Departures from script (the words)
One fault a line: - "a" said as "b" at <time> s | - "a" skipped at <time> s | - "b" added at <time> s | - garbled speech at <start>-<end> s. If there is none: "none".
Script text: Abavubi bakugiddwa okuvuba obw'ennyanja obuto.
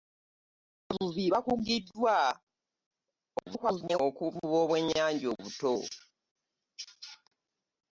- garbled speech at 3.4-4.0 s